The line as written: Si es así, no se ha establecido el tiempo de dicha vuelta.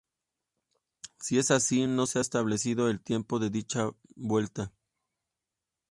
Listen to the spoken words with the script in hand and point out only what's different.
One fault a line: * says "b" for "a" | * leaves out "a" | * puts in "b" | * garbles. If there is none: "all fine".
all fine